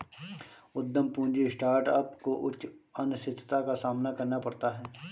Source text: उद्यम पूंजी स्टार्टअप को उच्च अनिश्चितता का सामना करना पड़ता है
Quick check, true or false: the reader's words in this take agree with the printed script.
true